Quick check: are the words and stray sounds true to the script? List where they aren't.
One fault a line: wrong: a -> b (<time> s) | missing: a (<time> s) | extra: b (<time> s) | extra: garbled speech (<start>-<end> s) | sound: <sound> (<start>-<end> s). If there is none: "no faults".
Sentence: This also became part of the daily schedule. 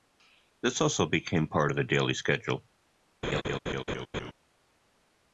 sound: laugh (3.2-4.3 s)